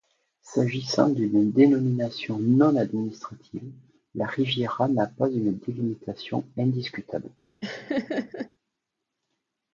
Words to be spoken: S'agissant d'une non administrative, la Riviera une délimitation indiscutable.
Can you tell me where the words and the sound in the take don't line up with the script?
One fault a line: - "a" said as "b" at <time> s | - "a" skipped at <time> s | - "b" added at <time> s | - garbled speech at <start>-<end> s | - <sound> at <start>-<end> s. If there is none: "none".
- "dénomination" added at 1.5 s
- "n'a pas" added at 4.9 s
- laugh at 7.6-8.5 s